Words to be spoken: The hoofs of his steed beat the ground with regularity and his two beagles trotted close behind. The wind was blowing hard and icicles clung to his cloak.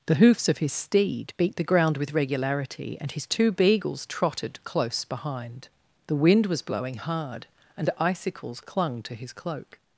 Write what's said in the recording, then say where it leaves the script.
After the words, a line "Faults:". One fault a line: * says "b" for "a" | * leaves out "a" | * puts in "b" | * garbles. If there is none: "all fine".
The hoofs of his steed beat the ground with regularity and his two beagles trotted close behind. The wind was blowing hard and icicles clung to his cloak.
Faults:
all fine